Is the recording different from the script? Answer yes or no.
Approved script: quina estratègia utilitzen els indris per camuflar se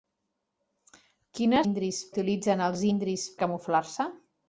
yes